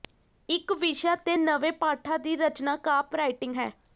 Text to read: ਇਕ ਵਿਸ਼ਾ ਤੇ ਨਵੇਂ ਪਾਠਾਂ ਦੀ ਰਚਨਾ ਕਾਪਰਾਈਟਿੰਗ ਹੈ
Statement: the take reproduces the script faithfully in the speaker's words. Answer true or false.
true